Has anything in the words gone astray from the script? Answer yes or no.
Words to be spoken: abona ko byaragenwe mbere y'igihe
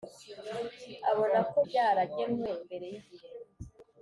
no